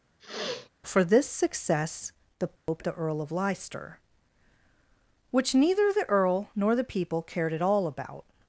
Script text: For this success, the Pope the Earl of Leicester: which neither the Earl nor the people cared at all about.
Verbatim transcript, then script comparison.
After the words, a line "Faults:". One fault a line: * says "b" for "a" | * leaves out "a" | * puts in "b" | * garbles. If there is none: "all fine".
For this success, the Pope the Earl of Leicester: which neither the Earl nor the people cared at all about.
Faults:
all fine